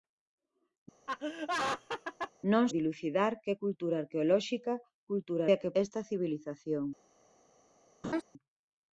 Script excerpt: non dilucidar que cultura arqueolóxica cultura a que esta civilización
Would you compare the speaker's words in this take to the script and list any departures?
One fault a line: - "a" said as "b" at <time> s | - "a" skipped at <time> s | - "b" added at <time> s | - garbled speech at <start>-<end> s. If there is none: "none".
none